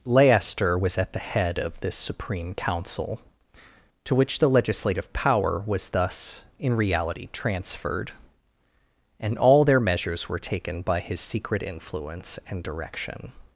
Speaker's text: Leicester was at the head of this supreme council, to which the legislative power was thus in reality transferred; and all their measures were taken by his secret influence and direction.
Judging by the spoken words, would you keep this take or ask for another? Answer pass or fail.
pass